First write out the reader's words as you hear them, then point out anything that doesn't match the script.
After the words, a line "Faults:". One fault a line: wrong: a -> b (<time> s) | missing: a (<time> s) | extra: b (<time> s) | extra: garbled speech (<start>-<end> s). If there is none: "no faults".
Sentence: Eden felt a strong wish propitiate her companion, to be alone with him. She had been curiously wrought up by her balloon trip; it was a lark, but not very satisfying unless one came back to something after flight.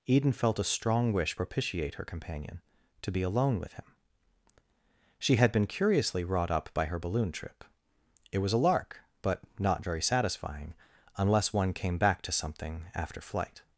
Eden felt a strong wish propitiate her companion, to be alone with him. She had been curiously wrought up by her balloon trip; it was a lark, but not very satisfying unless one came back to something after flight.
Faults:
no faults